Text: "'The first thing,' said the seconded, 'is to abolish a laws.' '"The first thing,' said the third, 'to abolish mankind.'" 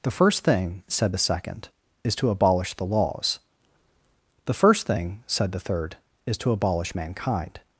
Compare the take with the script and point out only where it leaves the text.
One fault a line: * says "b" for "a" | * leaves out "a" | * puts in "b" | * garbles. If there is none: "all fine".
* says "second" for "seconded"
* says "the" for "a"
* puts in "is"